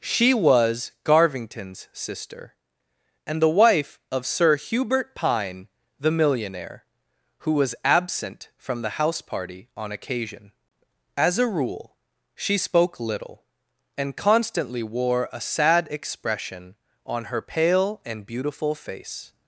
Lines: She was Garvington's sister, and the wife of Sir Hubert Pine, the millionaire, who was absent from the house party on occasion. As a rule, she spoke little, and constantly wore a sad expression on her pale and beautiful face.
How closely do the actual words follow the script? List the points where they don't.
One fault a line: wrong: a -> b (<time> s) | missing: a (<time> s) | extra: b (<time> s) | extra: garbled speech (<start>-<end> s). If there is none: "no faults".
no faults